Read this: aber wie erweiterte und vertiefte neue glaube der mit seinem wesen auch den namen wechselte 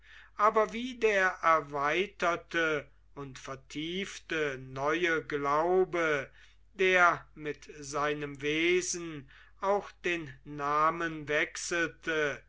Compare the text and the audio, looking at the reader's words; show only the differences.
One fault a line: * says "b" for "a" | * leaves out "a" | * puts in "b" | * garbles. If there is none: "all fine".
* puts in "der"